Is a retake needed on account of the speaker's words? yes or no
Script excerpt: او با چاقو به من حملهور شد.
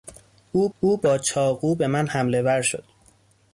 yes